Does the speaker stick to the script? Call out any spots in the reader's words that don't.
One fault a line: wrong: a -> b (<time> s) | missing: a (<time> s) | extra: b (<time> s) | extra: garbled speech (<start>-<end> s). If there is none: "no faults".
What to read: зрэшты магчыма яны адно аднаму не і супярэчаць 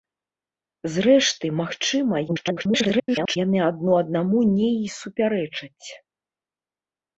extra: garbled speech (2.3-3.4 s)